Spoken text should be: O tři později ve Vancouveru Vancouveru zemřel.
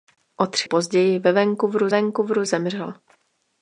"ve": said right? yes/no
yes